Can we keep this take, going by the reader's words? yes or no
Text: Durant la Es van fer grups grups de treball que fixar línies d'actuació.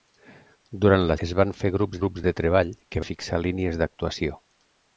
yes